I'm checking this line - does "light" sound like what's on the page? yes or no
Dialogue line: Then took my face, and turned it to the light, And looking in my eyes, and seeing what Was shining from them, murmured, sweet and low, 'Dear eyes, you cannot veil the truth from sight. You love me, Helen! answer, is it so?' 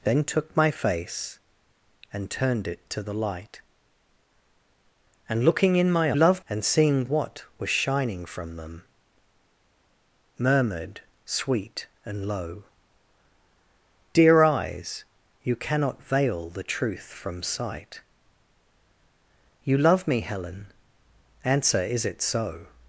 yes